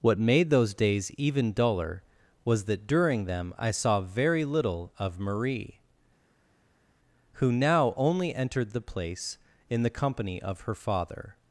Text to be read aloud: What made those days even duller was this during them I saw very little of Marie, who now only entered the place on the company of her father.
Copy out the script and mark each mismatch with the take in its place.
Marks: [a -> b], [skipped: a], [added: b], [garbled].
What made those days even duller was [this -> that] during them I saw very little of Marie, who now only entered the place [on -> in] the company of her father.